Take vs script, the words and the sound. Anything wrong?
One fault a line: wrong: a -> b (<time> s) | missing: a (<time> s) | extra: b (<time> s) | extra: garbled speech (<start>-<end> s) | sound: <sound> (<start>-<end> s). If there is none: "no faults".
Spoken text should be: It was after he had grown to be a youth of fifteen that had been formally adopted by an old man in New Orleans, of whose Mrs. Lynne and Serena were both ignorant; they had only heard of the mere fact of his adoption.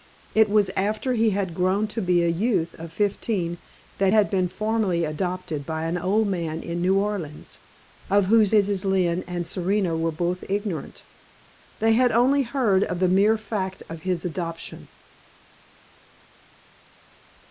no faults